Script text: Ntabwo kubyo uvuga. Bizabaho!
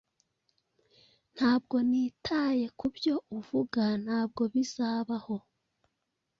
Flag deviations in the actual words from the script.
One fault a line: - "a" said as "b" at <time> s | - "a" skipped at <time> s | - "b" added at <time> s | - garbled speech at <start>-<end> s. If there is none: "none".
- "nitaye" added at 1.9 s
- "Ntabwo" added at 4.0 s